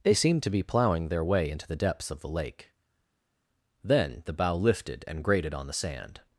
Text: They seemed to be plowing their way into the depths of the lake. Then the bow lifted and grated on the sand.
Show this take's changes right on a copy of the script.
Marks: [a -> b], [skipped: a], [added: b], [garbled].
They seemed to be plowing their way into the depths of the lake. Then the bow lifted and grated on the sand.